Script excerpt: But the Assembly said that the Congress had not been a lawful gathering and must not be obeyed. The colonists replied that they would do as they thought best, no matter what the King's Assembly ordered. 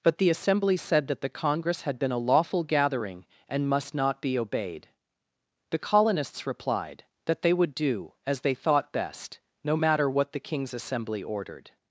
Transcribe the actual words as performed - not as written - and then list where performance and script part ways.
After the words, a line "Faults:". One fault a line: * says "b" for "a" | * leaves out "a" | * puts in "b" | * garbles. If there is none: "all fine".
But the Assembly said that the Congress had been a lawful gathering and must not be obeyed. The colonists replied that they would do as they thought best, no matter what the King's Assembly ordered.
Faults:
* leaves out "not"